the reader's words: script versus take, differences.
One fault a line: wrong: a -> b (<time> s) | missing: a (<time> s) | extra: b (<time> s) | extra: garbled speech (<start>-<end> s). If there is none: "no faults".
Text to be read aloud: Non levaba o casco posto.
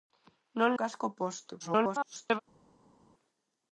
missing: levaba (0.8 s)
extra: garbled speech (1.6-2.4 s)